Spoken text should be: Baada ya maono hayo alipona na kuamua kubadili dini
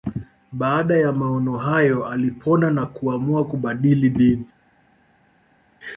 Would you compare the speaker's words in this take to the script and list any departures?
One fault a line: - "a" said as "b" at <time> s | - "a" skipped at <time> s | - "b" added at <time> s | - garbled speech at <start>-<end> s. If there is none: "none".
none